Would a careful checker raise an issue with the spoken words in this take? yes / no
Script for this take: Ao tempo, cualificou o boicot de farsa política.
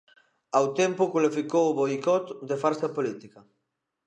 no